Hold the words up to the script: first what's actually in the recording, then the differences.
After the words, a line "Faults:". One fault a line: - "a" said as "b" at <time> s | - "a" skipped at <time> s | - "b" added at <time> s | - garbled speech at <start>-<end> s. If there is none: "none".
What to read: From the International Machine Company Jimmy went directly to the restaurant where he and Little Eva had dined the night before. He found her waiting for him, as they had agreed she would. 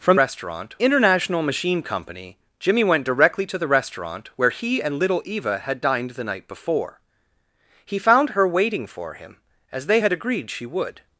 From restaurant International Machine Company Jimmy went directly to the restaurant where he and Little Eva had dined the night before. He found her waiting for him, as they had agreed she would.
Faults:
- "the" said as "restaurant" at 0.2 s